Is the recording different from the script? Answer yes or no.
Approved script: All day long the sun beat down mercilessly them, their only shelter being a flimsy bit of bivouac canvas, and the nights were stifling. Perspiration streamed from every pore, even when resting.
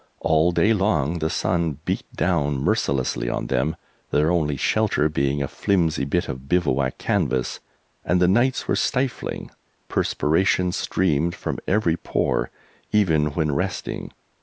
yes